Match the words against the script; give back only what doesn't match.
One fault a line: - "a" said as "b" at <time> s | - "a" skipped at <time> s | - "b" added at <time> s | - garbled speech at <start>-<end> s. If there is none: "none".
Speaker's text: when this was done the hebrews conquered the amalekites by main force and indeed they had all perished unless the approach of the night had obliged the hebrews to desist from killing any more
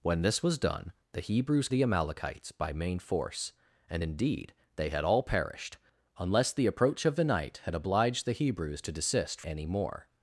- "conquered" skipped at 1.7 s
- "from killing" skipped at 9.4 s